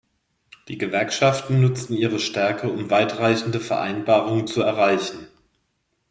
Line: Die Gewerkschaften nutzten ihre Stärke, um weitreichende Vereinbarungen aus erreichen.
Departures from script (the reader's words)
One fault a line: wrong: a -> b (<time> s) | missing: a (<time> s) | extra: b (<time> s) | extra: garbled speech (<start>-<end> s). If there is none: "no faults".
wrong: aus -> zu (4.5 s)